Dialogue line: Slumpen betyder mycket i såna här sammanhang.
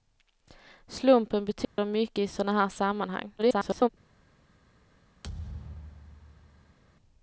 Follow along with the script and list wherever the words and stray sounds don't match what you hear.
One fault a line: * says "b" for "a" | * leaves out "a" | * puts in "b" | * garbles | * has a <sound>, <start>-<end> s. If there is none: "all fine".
* has a dropout, 1.6-1.8 s
* garbles
* has a thud, 5.2-6.8 s